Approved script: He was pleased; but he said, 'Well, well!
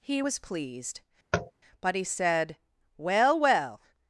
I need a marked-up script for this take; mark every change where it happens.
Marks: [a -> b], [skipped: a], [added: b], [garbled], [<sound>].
He was pleased; [tap] but he said, 'Well, well!